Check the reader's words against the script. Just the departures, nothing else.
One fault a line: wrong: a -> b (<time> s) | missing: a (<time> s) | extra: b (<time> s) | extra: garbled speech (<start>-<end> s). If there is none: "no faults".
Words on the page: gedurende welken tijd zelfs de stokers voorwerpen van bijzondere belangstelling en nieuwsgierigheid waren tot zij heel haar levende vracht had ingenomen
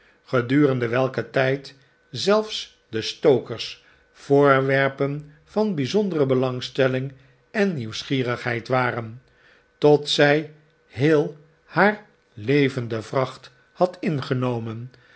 no faults